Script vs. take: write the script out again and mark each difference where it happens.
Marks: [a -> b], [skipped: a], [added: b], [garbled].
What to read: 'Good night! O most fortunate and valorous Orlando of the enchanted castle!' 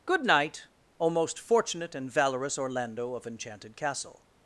'Good night! O most fortunate and valorous Orlando of [skipped: the] enchanted castle!'